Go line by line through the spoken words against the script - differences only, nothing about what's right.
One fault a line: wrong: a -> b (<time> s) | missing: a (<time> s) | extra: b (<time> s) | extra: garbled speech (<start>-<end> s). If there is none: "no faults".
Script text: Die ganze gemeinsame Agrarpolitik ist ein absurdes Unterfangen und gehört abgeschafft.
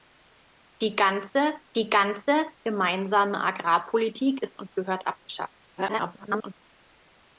extra: die ganze (1.8 s)
missing: ein absurdes Unterfangen (4.6 s)
extra: garbled speech (5.8-6.6 s)